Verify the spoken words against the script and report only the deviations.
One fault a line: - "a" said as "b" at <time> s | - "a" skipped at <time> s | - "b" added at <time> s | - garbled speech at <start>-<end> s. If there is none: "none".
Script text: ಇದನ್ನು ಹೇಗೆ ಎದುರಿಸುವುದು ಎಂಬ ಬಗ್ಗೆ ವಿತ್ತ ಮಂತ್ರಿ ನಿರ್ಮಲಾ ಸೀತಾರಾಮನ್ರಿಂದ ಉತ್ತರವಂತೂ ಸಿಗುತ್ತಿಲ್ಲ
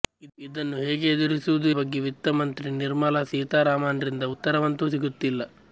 - "ಎಂಬ" skipped at 1.7 s